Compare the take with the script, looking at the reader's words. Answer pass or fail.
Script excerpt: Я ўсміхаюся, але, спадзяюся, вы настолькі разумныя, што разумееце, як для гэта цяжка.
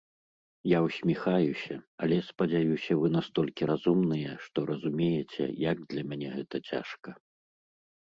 fail